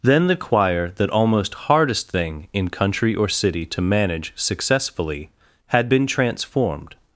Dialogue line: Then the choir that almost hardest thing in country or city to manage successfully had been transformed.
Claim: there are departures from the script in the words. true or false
false